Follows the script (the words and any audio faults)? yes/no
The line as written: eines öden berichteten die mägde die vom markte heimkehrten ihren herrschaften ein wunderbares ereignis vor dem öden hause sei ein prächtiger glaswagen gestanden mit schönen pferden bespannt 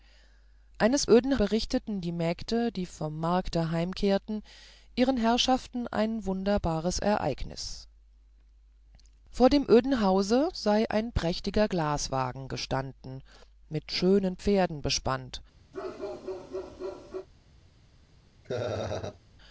no